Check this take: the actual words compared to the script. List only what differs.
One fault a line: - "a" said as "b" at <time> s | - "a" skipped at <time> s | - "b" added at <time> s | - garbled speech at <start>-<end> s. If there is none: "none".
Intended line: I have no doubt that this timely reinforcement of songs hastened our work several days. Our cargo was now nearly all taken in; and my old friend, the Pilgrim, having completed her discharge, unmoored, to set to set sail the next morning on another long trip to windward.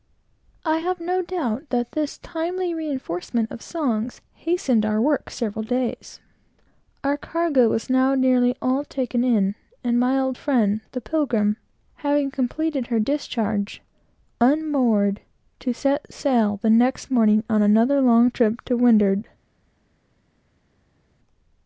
- "to set" skipped at 16.1 s